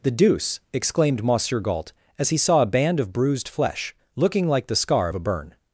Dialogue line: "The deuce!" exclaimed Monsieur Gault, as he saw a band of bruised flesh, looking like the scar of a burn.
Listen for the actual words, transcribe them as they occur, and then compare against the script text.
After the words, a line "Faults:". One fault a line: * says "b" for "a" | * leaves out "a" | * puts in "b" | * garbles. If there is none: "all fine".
"The deuce!" exclaimed Monsieur Gault, as he saw a band of bruised flesh, looking like the scar of a burn.
Faults:
all fine